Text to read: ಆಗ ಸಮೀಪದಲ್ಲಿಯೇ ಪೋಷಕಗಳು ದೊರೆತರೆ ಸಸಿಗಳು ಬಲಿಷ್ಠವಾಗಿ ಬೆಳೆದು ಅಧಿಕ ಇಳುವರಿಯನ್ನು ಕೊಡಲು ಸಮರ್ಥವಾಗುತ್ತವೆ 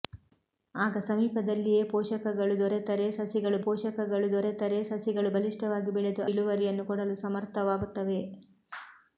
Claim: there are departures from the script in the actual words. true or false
true